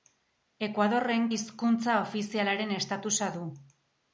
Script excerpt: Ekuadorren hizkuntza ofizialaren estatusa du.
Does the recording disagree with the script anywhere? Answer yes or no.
no